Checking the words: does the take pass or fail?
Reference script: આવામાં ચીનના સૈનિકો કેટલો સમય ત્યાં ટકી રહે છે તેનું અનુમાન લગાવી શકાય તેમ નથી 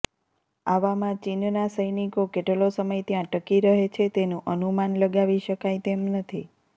pass